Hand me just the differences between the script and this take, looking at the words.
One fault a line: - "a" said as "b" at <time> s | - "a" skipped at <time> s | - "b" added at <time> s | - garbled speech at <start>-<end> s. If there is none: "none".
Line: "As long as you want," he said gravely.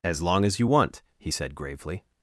none